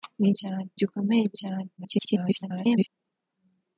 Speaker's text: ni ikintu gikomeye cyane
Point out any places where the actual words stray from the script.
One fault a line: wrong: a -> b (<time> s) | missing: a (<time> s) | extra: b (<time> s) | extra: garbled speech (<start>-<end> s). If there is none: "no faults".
wrong: ikintu -> cyane (0.4 s)
extra: garbled speech (1.8-2.9 s)